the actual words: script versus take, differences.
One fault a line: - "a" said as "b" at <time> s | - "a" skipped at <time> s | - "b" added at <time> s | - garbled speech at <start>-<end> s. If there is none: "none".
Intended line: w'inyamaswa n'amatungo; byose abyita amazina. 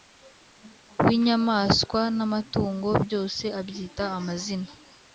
none